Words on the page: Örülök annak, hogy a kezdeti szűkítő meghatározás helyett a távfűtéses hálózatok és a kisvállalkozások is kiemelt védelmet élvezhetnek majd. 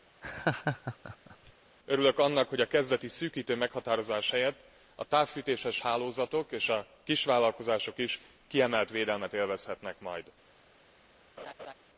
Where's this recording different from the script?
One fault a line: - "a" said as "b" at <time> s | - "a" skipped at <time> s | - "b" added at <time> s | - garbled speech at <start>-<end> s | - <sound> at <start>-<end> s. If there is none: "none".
- laugh at 0.2-1.5 s
- laugh at 11.4-11.7 s